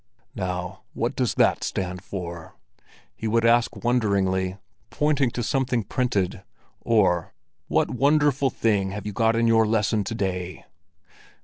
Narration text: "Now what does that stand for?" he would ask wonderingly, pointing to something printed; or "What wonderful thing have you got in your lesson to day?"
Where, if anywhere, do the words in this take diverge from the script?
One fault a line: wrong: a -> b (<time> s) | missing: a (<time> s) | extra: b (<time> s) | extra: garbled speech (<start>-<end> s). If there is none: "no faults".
no faults